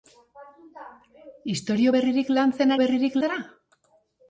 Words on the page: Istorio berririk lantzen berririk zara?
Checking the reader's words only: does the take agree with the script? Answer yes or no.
yes